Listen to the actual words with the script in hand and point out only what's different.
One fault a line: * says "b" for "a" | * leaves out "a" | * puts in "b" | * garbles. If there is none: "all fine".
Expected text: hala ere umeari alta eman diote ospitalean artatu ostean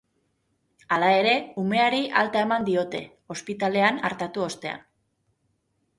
all fine